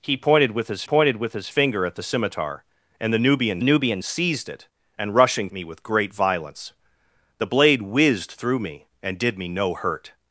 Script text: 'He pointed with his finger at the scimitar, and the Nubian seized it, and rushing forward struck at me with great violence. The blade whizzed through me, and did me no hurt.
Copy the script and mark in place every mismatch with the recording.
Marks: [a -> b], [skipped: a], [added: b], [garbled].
'He pointed with his [added: pointed with his] finger at the scimitar, and the Nubian [added: Nubian] seized it, and rushing [skipped: forward struck at] me with great violence. The blade whizzed through me, and did me no hurt.